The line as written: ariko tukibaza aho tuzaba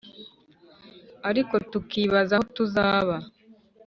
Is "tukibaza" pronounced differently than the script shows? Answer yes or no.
no